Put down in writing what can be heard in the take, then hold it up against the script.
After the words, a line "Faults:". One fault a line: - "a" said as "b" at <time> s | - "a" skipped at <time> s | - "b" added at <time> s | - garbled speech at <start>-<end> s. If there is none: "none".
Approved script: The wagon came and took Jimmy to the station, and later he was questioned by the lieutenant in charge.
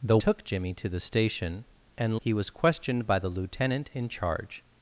The took Jimmy to the station, and he was questioned by the lieutenant in charge.
Faults:
- "wagon came and" skipped at 0.2 s
- "later" skipped at 2.2 s